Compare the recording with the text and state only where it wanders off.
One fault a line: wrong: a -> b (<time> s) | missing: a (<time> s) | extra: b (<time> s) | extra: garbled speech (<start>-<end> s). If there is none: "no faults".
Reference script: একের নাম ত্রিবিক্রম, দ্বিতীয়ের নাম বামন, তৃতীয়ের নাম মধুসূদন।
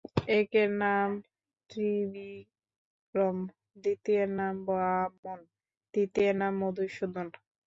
no faults